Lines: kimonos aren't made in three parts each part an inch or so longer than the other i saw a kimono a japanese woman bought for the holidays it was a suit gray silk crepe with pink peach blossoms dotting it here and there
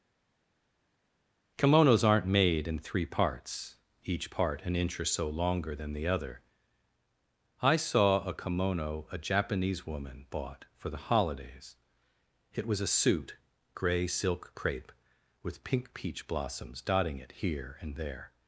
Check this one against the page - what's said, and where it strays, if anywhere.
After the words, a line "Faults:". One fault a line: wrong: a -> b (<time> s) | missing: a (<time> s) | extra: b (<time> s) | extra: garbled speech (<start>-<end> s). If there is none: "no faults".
kimonos aren't made in three parts each part an inch or so longer than the other i saw a kimono a japanese woman bought for the holidays it was a suit gray silk crepe with pink peach blossoms dotting it here and there
Faults:
no faults